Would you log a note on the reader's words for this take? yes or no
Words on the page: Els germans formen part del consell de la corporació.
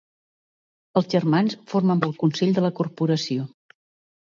yes